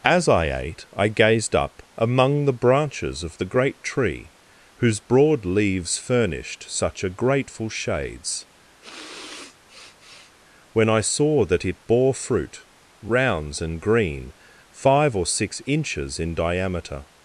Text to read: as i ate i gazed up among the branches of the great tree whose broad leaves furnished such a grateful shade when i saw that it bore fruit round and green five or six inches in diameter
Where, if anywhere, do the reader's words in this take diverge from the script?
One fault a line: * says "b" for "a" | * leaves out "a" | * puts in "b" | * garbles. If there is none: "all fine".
* says "shades" for "shade"
* says "rounds" for "round"